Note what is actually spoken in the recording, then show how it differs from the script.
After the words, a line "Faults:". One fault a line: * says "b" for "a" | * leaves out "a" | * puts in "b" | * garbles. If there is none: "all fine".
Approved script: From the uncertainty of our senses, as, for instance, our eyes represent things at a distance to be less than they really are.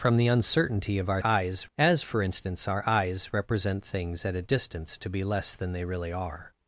From the uncertainty of our eyes, as, for instance, our eyes represent things at a distance to be less than they really are.
Faults:
* says "eyes" for "senses"